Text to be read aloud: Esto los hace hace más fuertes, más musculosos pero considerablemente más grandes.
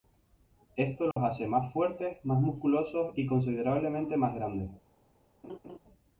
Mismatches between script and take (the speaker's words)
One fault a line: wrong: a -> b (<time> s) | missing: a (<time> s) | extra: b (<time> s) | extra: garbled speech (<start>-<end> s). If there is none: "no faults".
missing: hace (1.4 s)
wrong: pero -> y (3.1 s)